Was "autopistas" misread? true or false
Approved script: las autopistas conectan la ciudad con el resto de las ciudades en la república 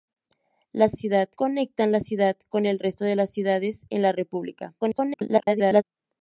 true